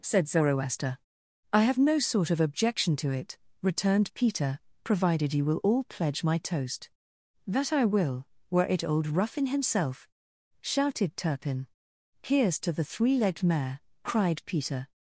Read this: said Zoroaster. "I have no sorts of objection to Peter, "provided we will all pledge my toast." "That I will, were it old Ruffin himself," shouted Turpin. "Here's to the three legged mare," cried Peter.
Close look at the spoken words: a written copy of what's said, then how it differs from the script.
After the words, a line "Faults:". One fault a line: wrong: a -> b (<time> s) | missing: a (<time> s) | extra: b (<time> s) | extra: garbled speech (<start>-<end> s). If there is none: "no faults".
said Zoroaster. "I have no sort of objection to it," returned Peter, "provided you will all pledge my toast." "That I will, were it old Ruffin himself," shouted Turpin. "Here's to the three legged mare," cried Peter.
Faults:
wrong: sorts -> sort (2.0 s)
extra: it returned (3.1 s)
wrong: we -> you (5.3 s)